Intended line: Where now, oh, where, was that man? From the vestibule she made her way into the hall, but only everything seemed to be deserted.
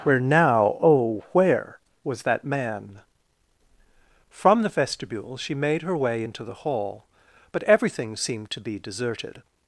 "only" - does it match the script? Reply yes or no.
no